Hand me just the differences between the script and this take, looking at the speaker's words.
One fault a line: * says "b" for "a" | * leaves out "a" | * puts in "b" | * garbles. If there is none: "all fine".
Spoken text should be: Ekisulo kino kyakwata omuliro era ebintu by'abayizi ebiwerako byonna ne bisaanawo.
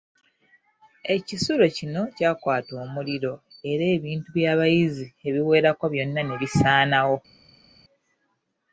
all fine